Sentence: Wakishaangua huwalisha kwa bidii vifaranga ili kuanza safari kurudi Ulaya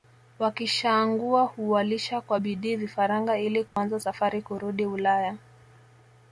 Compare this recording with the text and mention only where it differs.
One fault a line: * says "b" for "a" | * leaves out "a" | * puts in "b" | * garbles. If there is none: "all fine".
all fine